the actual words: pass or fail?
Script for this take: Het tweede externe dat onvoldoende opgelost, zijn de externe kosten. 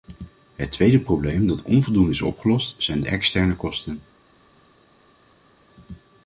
fail